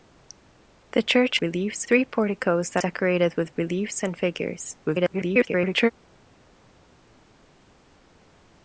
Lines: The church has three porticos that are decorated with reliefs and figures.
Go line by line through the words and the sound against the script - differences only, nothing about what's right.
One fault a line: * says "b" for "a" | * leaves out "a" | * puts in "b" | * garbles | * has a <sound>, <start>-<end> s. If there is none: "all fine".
* says "reliefs" for "has"
* leaves out "are"
* garbles